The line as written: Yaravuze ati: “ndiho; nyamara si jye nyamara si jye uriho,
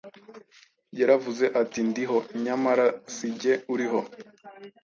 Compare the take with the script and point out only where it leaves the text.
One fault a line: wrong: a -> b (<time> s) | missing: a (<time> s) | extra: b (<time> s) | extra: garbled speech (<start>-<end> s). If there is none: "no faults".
missing: nyamara si jye (3.5 s)